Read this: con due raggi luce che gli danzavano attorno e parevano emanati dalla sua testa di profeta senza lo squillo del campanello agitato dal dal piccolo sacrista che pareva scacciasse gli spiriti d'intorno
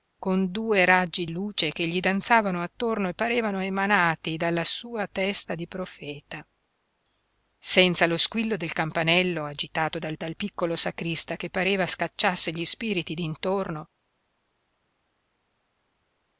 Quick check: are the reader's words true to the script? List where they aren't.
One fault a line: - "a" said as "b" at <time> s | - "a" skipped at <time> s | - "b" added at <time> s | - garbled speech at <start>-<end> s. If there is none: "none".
none